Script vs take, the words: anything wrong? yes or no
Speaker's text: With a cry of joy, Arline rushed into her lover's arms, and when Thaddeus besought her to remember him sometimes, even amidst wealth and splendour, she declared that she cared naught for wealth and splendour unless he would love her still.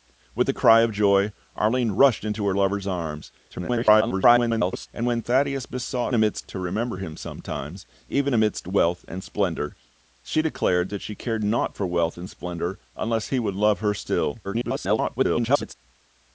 yes